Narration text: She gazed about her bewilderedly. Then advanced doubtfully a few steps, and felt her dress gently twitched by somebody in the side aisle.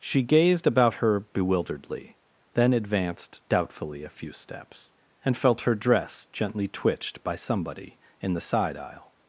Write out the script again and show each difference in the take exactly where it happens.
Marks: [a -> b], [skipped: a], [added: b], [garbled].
She gazed about her bewilderedly. Then advanced doubtfully a few steps, and felt her dress gently twitched by somebody in the side aisle.